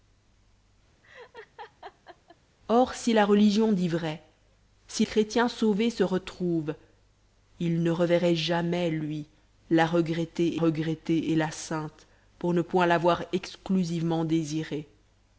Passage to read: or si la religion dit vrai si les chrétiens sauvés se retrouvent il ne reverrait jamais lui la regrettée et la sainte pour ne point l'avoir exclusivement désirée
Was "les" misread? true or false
true